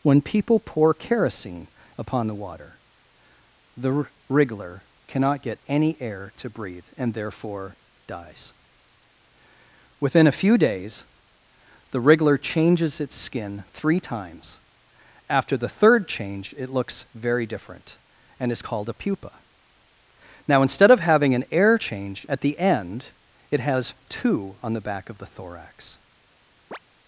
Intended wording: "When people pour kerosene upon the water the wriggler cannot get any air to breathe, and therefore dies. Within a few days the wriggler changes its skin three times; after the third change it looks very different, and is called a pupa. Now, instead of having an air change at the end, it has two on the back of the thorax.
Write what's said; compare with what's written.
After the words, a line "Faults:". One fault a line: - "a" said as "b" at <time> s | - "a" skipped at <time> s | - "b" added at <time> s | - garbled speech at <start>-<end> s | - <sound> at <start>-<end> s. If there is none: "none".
"When people pour kerosene upon the water the wriggler cannot get any air to breathe, and therefore dies. Within a few days the wriggler changes its skin three times; after the third change it looks very different, and is called a pupa. Now, instead of having an air change at the end, it has two on the back of the thorax.
Faults:
- chirp at 26.7-26.8 s